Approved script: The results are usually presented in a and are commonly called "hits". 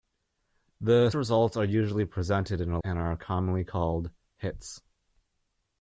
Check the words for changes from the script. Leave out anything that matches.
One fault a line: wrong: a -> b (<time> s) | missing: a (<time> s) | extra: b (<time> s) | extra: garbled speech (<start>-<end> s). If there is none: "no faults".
no faults